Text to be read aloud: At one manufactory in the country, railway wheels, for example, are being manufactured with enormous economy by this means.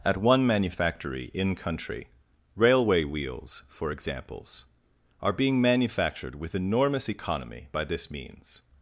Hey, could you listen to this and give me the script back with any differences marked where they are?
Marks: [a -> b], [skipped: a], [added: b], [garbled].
At one manufactory in [skipped: the] country, railway wheels, for [example, -> examples] are being manufactured with enormous economy by this means.